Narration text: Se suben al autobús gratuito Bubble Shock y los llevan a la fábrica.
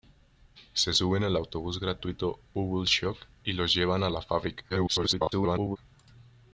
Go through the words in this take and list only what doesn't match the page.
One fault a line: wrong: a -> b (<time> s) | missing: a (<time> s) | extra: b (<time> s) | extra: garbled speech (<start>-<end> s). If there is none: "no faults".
extra: garbled speech (4.7-5.8 s)